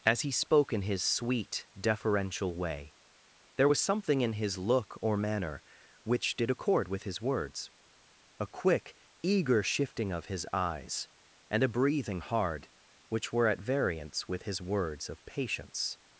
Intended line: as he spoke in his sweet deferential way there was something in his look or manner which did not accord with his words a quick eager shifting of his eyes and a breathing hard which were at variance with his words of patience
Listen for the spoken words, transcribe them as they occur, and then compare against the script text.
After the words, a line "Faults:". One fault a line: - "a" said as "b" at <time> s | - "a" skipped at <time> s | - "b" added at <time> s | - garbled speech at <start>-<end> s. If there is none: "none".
as he spoke in his sweet deferential way there was something in his look or manner which did accord with his words a quick eager shifting of his eyes and a breathing hard which were at variance with his words of patience
Faults:
- "not" skipped at 6.5 s